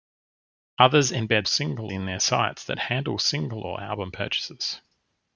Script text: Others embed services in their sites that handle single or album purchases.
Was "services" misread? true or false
true